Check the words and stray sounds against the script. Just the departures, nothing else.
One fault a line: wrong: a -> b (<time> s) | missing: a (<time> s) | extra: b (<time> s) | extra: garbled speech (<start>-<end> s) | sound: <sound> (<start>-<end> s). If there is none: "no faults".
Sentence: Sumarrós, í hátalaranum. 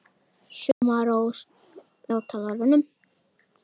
sound: dropout (0.7-0.8 s)